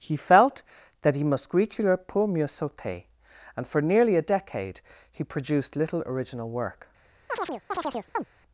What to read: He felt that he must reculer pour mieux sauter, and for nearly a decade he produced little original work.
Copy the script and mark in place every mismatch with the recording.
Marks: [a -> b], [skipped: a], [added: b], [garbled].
He felt that he must reculer pour mieux sauter, and for nearly a decade he produced little original work.